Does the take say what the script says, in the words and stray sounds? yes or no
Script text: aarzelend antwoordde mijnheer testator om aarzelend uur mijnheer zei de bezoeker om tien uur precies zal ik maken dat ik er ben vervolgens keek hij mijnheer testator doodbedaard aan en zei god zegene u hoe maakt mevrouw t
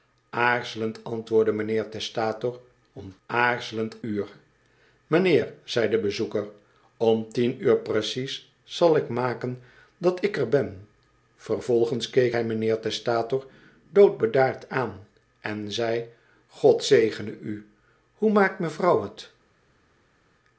yes